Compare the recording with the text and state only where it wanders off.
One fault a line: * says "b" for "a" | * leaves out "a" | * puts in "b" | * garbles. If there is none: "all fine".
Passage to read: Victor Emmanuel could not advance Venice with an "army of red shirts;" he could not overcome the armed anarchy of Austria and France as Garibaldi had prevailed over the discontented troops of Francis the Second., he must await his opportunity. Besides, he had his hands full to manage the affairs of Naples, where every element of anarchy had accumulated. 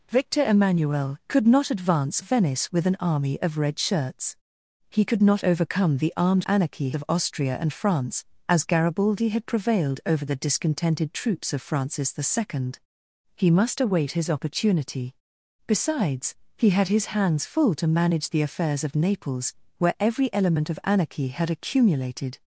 all fine